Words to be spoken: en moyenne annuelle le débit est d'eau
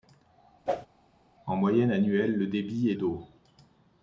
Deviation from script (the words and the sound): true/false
true